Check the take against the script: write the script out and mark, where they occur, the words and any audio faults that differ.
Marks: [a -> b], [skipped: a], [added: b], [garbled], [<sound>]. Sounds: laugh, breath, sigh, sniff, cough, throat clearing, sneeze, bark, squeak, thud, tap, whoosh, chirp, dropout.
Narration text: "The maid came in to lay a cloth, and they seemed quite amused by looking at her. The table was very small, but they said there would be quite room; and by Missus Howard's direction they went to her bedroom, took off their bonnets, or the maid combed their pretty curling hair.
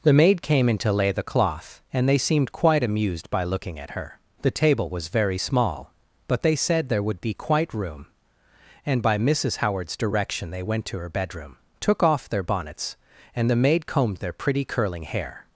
"The maid came in to lay [a -> the] cloth, and they seemed quite amused by looking at her. The table was very small, but they said there would be quite room; and by Missus Howard's direction they went to her bedroom, took off their bonnets, [or -> and] the maid combed their pretty curling hair.